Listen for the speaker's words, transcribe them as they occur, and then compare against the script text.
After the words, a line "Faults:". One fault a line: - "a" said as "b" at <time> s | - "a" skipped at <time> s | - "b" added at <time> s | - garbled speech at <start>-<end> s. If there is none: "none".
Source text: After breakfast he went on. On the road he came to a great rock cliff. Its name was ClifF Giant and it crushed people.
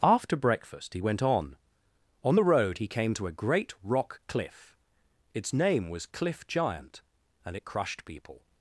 After breakfast he went on. On the road he came to a great rock cliff. Its name was ClifF Giant and it crushed people.
Faults:
none